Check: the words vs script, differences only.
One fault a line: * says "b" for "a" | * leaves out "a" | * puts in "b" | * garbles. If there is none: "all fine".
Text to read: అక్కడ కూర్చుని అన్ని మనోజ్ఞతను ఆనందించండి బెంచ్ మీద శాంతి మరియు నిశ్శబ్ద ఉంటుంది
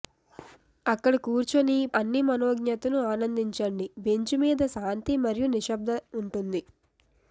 all fine